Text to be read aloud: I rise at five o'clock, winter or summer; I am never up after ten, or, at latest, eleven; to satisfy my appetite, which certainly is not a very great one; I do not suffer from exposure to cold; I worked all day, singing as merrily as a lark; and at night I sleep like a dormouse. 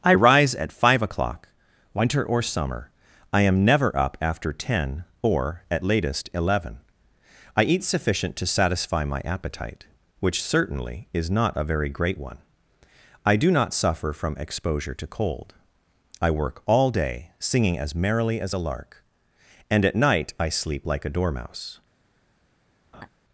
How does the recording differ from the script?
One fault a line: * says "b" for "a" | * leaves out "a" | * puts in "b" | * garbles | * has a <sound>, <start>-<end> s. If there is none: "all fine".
* puts in "I eat sufficient"
* says "work" for "worked"
* has a laugh, 22.9-23.1 s